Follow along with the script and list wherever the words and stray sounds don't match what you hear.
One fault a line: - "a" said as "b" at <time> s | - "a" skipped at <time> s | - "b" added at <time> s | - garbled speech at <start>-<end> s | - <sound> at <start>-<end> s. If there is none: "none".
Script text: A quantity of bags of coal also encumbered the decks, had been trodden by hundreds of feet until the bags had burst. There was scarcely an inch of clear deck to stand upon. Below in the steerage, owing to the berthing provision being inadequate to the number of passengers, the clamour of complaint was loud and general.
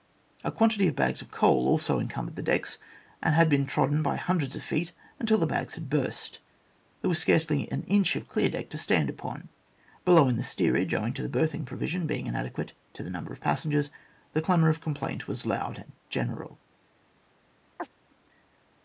- "and" added at 3.2 s
- chirp at 17.8-17.9 s